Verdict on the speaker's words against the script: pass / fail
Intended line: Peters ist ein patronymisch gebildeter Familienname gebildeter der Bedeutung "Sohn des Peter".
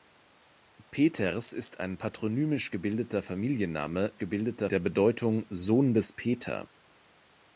pass